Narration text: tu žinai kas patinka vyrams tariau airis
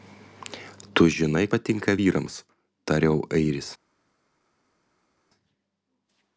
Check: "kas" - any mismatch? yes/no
yes